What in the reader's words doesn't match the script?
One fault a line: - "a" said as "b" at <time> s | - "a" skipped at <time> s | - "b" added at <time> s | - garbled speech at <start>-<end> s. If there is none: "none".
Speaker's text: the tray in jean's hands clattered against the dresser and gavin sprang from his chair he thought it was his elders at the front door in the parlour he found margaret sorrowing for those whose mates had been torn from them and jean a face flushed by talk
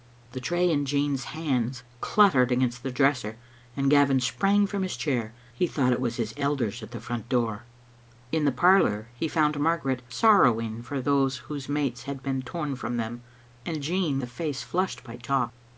none